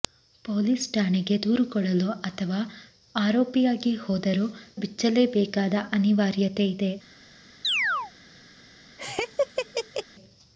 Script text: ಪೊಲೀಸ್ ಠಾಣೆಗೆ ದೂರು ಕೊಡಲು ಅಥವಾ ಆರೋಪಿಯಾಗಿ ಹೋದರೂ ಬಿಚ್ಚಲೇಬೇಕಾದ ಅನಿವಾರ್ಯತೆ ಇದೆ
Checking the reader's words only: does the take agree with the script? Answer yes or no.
yes